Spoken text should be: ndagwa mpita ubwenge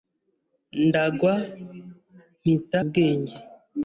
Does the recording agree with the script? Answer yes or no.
yes